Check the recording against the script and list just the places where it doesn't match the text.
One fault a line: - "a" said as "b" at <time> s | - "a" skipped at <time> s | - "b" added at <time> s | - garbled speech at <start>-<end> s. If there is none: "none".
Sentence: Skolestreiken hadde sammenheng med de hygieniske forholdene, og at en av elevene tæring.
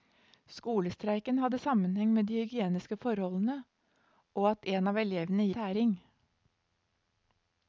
none